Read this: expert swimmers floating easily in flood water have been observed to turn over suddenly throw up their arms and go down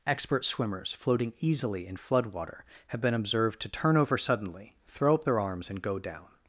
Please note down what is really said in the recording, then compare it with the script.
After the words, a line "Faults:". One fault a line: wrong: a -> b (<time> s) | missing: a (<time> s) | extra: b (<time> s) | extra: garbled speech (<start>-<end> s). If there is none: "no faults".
expert swimmers floating easily in flood water have been observed to turn over suddenly throw up their arms and go down
Faults:
no faults